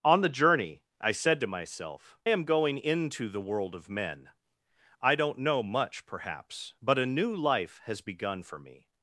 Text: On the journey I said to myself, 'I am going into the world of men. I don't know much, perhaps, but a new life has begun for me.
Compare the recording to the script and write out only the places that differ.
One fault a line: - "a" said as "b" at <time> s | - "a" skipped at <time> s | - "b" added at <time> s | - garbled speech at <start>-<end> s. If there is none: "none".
- "I" skipped at 2.2 s